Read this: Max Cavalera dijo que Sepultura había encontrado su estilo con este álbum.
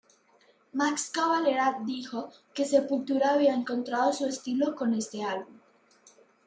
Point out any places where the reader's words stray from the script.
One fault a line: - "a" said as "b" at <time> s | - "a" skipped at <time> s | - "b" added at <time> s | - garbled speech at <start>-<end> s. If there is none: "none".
none